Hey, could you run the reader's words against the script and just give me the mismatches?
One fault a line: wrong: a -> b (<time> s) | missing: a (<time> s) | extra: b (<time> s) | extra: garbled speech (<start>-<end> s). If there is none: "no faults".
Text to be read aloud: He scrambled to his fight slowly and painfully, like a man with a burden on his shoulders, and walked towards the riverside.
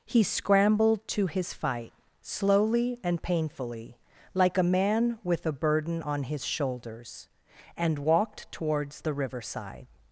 no faults